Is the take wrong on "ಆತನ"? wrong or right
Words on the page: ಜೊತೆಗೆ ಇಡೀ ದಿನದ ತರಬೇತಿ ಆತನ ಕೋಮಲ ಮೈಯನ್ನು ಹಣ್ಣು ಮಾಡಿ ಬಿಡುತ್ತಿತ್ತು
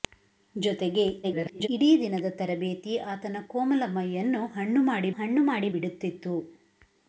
right